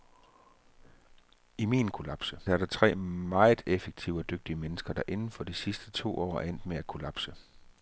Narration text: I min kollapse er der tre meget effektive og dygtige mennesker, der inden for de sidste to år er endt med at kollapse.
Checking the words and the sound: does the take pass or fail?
pass